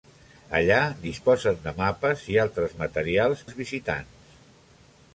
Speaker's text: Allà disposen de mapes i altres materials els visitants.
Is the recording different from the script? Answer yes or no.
no